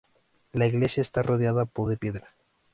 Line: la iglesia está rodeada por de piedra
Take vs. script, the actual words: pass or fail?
pass